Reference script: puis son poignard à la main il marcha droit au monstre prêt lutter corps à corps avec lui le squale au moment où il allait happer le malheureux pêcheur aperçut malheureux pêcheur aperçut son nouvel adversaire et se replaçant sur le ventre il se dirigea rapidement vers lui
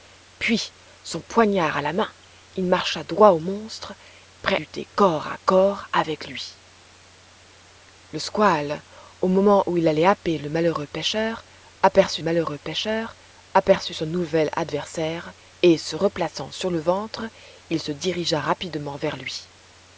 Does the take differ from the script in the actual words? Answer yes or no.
no